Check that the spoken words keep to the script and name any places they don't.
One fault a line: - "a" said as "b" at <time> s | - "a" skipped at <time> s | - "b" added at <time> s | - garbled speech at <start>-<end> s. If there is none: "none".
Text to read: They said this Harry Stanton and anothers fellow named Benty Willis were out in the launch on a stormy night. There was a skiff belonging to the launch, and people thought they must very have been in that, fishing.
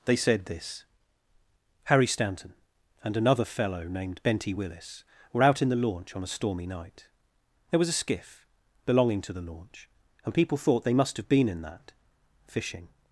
- "anothers" said as "another" at 3.2 s
- "very" skipped at 11.2 s